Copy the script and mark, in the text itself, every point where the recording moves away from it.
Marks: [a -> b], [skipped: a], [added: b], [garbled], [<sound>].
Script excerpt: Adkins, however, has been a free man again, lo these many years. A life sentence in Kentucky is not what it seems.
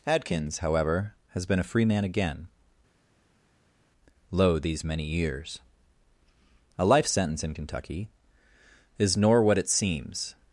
Adkins, however, has been a free man again, lo these many years. A life sentence in Kentucky is [not -> nor] what it seems.